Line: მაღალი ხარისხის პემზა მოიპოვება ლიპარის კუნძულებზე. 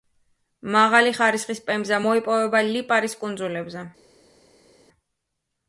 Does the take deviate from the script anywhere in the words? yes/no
no